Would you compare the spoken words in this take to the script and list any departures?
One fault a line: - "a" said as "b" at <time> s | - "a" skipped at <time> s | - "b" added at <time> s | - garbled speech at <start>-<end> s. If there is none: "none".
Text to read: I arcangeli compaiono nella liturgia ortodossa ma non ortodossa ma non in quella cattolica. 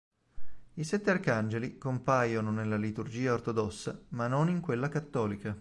- "sette" added at 0.8 s
- "ortodossa ma non" skipped at 4.5 s